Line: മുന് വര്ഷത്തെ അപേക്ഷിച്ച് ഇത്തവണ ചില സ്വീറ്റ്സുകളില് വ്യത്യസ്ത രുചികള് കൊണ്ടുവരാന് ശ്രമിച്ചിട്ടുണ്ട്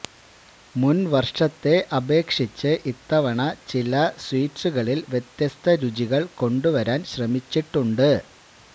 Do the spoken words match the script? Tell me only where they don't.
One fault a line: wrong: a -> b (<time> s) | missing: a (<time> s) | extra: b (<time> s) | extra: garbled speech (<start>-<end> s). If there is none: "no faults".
no faults